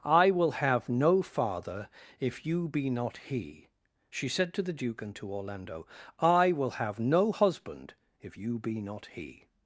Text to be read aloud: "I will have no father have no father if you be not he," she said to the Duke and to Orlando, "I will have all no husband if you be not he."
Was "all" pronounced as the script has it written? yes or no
no